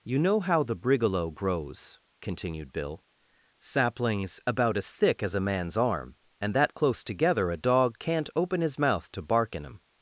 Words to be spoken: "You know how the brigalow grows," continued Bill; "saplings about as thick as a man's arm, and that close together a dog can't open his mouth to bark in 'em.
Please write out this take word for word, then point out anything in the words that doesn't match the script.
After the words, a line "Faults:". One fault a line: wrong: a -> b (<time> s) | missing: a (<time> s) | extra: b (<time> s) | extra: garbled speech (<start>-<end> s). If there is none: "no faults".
"You know how the brigalow grows," continued Bill; "saplings about as thick as a man's arm, and that close together a dog can't open his mouth to bark in 'em.
Faults:
no faults